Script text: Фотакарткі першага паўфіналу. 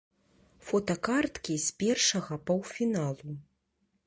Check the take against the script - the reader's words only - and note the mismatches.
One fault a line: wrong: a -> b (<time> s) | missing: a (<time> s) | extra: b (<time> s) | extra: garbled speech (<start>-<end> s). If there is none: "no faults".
extra: з (1.7 s)